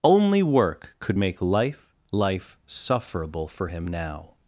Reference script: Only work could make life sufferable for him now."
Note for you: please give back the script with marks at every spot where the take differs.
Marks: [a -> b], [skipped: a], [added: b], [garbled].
Only work could make life [added: life] sufferable for him now."